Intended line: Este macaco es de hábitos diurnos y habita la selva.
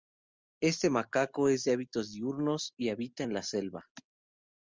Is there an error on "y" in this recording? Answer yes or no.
no